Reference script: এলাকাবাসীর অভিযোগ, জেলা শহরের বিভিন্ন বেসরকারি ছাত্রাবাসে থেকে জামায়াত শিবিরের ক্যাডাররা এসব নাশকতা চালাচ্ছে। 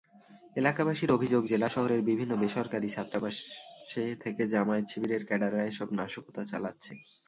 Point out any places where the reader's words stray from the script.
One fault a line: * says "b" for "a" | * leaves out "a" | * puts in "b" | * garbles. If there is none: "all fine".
all fine